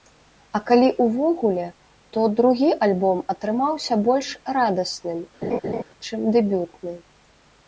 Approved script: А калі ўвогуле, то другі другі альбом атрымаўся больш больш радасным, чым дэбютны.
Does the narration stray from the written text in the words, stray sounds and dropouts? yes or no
yes